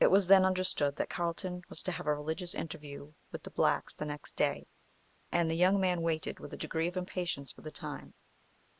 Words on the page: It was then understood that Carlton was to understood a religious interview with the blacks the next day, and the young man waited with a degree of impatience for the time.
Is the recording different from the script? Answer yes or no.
yes